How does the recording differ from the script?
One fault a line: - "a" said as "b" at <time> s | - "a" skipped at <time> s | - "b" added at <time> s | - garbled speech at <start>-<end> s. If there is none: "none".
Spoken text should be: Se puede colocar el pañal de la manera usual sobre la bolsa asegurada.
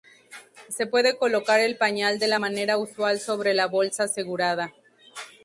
none